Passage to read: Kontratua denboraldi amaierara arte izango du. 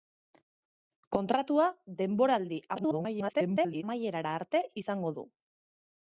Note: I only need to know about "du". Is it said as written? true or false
true